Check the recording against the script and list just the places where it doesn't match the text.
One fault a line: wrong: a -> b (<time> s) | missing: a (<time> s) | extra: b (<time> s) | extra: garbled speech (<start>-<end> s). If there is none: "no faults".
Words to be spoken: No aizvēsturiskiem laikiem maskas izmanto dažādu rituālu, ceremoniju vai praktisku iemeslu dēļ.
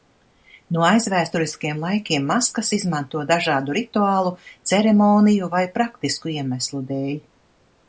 no faults